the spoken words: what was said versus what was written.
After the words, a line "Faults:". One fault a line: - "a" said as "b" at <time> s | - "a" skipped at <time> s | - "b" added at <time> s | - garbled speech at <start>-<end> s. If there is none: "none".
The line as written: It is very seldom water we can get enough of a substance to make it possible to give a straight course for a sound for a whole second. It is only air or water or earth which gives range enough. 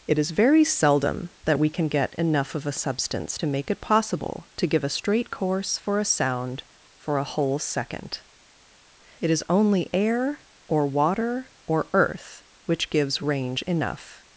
It is very seldom that we can get enough of a substance to make it possible to give a straight course for a sound for a whole second. It is only air or water or earth which gives range enough.
Faults:
- "water" said as "that" at 1.4 s